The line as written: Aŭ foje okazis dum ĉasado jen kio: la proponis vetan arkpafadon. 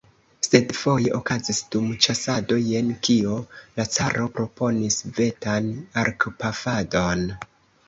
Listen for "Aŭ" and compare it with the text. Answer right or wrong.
wrong